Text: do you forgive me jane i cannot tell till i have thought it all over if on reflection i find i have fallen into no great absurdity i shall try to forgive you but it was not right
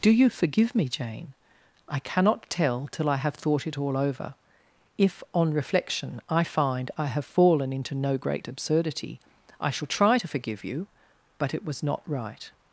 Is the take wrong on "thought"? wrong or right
right